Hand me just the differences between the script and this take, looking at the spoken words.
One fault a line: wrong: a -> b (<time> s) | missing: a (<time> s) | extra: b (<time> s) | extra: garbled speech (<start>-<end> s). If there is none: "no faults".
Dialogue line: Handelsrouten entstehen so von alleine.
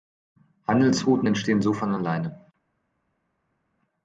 no faults